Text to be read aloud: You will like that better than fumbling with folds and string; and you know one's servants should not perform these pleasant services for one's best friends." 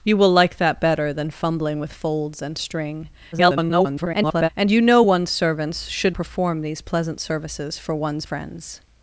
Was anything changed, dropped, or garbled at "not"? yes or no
yes